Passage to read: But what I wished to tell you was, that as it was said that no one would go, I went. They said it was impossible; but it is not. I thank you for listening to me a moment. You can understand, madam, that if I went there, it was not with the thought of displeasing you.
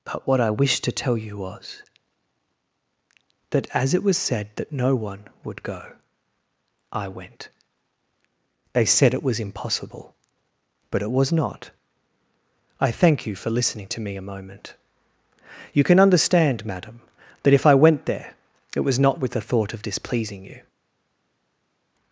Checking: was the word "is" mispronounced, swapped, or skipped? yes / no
yes